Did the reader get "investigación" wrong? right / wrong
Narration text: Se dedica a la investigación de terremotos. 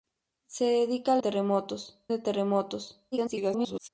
wrong